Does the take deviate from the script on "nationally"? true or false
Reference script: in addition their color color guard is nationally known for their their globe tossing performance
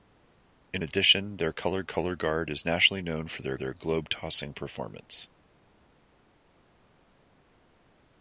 false